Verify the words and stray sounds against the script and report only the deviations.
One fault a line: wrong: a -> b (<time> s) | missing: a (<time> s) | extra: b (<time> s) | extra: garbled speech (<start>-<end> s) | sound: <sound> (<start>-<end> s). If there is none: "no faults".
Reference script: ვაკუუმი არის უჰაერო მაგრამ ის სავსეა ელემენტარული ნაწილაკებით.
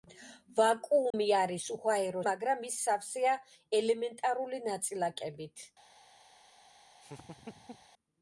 sound: dropout (1.1-1.1 s)
sound: laugh (7.0-7.9 s)